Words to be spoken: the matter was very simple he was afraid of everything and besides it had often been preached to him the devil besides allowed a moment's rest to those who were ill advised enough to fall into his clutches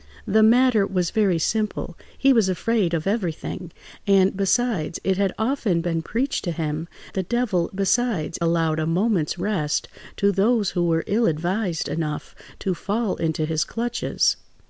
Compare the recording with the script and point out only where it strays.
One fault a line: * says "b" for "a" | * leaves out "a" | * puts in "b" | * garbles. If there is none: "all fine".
all fine